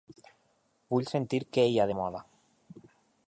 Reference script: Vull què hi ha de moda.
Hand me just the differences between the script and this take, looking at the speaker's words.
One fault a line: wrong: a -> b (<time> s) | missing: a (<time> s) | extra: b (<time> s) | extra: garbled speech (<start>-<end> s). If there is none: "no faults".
extra: sentir (1.1 s)